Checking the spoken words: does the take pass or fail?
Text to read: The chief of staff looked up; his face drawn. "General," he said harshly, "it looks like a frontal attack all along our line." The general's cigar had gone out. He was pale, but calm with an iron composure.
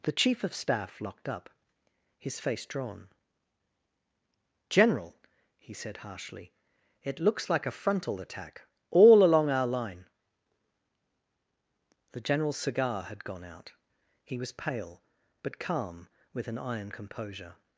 fail